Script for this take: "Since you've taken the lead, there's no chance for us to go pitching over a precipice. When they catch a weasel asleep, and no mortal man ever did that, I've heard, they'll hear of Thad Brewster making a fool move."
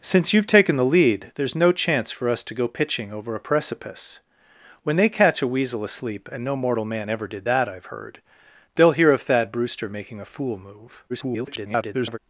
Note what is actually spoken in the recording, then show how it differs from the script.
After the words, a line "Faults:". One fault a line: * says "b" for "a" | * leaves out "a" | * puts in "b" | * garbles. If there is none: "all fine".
"Since you've taken the lead, there's no chance for us to go pitching over a precipice. When they catch a weasel asleep, and no mortal man ever did that, I've heard, they'll hear of Thad Brewster making a fool move." [garbled]
Faults:
* garbles